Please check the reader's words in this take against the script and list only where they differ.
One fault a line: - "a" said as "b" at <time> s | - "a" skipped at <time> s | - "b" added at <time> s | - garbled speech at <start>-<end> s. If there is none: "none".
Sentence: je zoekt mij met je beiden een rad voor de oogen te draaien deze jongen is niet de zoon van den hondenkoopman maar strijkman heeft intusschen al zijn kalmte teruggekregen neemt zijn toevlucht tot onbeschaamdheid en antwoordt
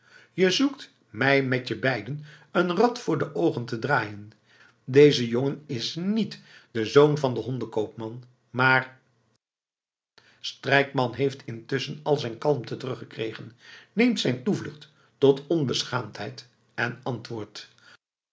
none